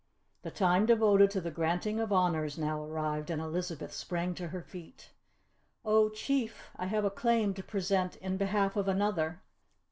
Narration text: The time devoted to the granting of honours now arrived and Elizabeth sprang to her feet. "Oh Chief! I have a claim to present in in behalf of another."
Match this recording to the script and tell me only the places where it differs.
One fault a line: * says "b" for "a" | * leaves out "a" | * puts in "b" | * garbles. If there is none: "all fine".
* leaves out "in"